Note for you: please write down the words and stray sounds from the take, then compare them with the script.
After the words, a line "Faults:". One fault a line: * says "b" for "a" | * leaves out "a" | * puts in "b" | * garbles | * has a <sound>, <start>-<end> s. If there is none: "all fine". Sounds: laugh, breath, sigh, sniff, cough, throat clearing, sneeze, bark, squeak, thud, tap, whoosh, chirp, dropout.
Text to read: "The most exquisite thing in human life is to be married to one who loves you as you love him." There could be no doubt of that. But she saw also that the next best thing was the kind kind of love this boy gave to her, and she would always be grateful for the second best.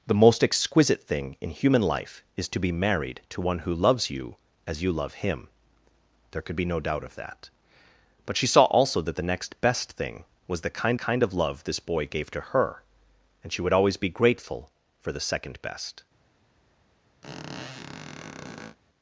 "The most exquisite thing in human life is to be married to one who loves you as you love him." There could be no doubt of that. But she saw also that the next best thing was the kind kind of love this boy gave to her, and she would always be grateful for the second best.
Faults:
* has a squeak, 17.2-18.8 s